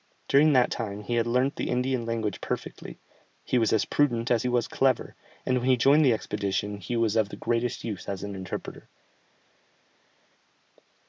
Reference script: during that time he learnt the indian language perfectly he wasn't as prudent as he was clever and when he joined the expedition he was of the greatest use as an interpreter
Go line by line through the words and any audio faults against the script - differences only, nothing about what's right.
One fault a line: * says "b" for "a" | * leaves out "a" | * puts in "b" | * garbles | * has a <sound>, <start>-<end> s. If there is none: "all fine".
* puts in "had"
* says "was" for "wasn't"